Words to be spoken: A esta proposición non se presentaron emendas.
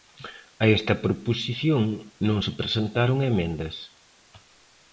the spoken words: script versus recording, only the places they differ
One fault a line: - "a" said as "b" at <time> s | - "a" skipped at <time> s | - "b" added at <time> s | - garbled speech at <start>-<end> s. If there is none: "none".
none